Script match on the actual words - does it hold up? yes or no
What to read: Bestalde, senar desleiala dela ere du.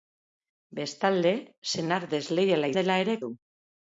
yes